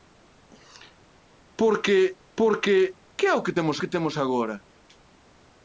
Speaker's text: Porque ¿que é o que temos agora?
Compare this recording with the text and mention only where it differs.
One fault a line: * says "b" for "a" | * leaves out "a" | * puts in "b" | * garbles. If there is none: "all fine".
* puts in "porque"
* puts in "que temos"